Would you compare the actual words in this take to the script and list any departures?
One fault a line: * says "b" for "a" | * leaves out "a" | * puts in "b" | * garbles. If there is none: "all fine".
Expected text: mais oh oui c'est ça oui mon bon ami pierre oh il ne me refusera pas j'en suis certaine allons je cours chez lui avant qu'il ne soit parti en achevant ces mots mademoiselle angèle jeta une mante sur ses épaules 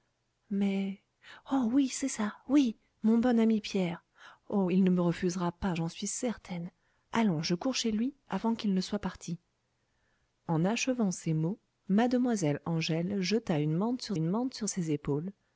* puts in "une mante sur"